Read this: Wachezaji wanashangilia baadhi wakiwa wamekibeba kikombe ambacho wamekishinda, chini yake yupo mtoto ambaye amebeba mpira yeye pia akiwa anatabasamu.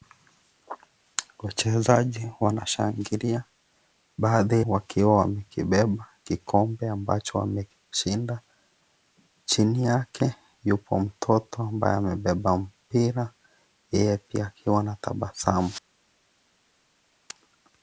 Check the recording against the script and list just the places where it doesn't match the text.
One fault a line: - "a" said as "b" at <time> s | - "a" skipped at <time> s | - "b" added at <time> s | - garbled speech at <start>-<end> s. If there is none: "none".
none